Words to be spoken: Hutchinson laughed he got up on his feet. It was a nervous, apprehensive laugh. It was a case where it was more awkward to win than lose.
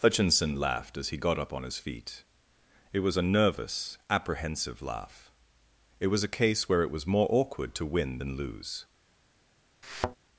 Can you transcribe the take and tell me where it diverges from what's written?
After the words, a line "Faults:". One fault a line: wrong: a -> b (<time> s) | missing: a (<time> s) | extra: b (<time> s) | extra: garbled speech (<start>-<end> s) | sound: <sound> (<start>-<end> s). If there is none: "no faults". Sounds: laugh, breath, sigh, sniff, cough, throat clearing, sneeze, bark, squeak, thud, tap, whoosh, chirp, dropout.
Hutchinson laughed as he got up on his feet. It was a nervous, apprehensive laugh. It was a case where it was more awkward to win than lose.
Faults:
extra: as (1.0 s)
sound: thud (9.8-10.2 s)